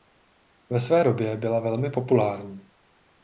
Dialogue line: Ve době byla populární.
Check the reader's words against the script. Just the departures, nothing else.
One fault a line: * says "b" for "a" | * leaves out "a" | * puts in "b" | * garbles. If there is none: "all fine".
* puts in "své"
* puts in "velmi"